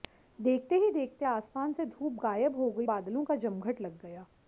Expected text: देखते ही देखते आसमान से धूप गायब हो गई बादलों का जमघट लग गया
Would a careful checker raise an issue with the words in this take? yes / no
no